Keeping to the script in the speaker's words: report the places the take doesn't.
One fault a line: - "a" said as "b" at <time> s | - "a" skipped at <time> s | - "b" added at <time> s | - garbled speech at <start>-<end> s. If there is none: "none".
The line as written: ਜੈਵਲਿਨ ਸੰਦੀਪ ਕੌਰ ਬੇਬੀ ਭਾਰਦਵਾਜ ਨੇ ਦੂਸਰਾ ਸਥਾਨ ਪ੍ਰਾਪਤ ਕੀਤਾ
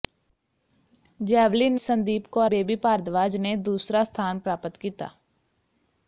none